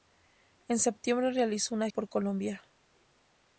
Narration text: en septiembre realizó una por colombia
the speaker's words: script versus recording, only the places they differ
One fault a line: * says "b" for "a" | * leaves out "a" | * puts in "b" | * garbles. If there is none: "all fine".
all fine